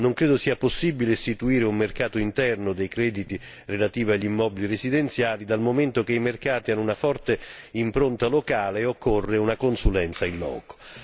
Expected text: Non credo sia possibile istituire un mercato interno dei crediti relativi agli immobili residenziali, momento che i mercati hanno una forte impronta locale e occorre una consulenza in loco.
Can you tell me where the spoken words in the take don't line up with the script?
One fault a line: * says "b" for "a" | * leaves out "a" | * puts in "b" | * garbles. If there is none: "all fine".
* puts in "dal"